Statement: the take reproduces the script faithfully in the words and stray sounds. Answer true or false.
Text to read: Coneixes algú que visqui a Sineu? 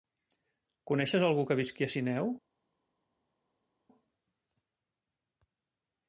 true